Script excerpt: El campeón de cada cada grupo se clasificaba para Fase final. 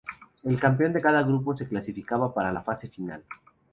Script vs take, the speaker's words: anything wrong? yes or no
yes